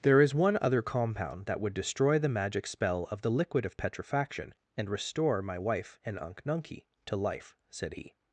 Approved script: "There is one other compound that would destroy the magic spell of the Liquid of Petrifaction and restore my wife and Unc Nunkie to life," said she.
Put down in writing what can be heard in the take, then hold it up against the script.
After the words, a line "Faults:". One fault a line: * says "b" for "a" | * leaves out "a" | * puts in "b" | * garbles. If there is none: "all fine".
"There is one other compound that would destroy the magic spell of the Liquid of Petrifaction and restore my wife and Unc Nunkie to life," said he.
Faults:
* says "he" for "she"